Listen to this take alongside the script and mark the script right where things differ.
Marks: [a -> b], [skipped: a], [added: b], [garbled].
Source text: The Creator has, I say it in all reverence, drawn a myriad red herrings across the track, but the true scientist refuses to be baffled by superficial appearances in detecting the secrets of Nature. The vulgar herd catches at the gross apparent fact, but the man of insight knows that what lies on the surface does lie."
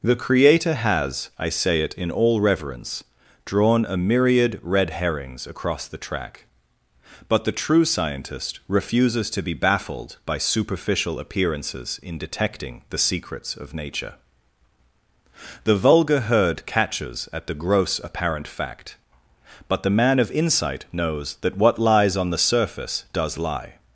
The Creator has, I say it in all reverence, drawn a myriad red herrings across the track, but the true scientist refuses to be baffled by superficial appearances in detecting the secrets of Nature. The vulgar herd catches at the gross apparent fact, but the man of insight knows that what lies on the surface does lie."